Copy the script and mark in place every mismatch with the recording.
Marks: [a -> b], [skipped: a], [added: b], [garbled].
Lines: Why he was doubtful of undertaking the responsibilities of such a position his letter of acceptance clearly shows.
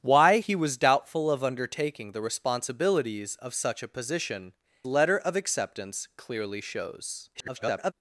Why he was doubtful of undertaking the responsibilities of such a position [skipped: his] letter of acceptance clearly shows. [garbled]